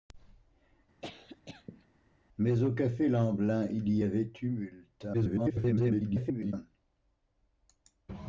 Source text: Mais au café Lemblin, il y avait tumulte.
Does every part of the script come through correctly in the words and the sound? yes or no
no